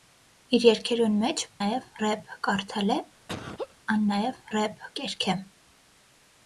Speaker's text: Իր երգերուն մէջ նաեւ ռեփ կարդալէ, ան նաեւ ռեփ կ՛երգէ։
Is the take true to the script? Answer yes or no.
yes